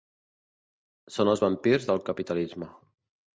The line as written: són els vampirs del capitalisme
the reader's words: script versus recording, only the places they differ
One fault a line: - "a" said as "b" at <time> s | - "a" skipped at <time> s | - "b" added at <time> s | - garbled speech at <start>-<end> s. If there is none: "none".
none